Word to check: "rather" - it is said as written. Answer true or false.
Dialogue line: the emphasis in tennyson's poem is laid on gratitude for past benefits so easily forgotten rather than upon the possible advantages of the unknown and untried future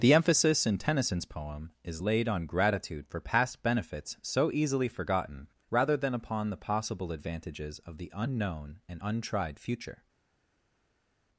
true